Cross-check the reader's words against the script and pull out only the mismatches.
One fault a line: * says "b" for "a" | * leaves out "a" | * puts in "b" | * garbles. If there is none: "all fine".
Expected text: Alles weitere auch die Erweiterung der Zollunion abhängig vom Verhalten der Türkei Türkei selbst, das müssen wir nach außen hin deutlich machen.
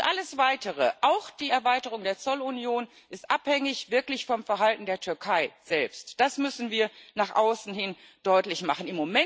* puts in "ist wirklich"
* leaves out "Türkei"